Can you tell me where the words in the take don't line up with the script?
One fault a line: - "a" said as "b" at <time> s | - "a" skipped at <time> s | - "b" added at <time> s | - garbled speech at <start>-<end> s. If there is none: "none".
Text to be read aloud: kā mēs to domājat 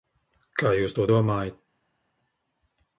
- "mēs" said as "jūs" at 0.8 s